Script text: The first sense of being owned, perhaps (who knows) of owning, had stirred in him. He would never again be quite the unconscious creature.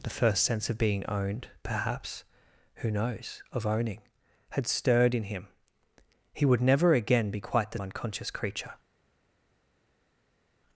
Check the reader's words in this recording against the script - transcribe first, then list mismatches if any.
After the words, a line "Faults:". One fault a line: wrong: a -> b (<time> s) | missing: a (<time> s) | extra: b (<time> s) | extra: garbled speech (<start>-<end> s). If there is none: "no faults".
The first sense of being owned, perhaps (who knows) of owning, had stirred in him. He would never again be quite the unconscious creature.
Faults:
no faults